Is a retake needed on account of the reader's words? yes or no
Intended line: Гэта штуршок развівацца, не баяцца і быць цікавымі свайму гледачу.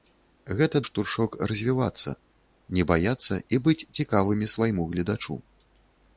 no